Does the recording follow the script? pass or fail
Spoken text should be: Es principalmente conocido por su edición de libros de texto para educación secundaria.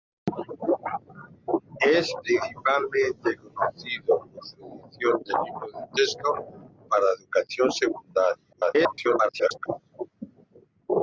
fail